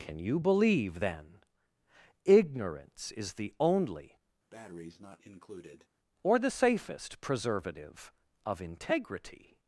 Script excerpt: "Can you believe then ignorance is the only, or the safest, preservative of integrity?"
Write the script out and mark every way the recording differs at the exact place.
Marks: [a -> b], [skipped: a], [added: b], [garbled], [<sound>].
"Can you believe then ignorance is the only, [breath] or the safest, preservative of integrity?"